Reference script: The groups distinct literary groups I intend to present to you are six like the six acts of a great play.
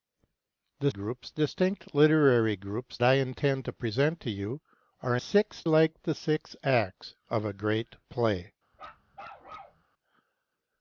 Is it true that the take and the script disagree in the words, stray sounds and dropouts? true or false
true